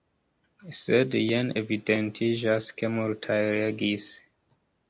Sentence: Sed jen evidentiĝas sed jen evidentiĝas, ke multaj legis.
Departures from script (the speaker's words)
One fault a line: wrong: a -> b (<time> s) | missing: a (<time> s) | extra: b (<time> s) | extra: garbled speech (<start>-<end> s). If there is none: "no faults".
missing: sed jen evidentiĝas (2.7 s)